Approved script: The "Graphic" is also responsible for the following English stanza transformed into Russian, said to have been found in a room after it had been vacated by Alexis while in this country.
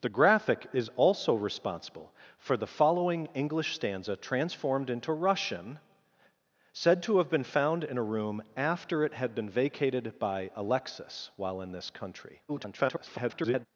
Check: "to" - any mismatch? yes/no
no